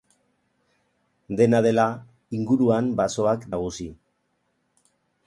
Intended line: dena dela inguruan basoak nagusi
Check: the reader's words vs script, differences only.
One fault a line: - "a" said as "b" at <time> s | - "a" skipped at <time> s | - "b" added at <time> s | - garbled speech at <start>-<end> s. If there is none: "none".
none